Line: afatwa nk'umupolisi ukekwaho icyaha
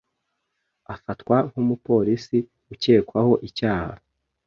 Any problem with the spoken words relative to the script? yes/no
no